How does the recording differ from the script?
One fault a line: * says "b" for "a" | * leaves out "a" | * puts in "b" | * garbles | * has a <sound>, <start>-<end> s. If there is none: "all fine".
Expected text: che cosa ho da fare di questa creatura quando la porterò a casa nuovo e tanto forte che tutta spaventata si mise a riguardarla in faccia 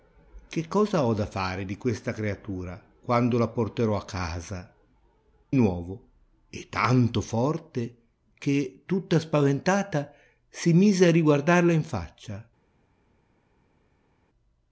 all fine